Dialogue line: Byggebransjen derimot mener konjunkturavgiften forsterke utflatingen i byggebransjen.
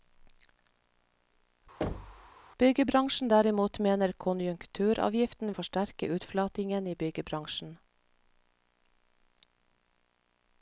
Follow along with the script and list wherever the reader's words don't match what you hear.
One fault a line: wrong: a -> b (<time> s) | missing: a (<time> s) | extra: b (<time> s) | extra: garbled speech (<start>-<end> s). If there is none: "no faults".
no faults